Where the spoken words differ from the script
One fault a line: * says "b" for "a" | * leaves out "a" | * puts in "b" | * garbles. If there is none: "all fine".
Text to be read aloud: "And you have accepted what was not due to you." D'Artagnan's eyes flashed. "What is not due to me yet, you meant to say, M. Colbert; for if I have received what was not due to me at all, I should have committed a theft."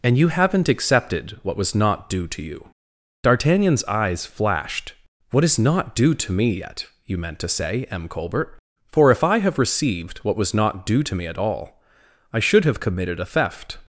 * says "haven't" for "have"